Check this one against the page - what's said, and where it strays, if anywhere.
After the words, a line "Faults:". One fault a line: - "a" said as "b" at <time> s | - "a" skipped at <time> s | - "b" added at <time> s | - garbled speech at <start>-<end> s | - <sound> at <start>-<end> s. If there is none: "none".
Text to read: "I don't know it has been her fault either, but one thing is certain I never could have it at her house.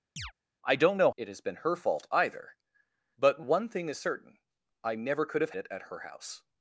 "I don't know it has been her fault either, but one thing is certain I never could have it at her house.
Faults:
- chirp at 0.2-0.3 s